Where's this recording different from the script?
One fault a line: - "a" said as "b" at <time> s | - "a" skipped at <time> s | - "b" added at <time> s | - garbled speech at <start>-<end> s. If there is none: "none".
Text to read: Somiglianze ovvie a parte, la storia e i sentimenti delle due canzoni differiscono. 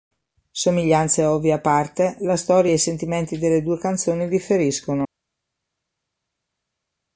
none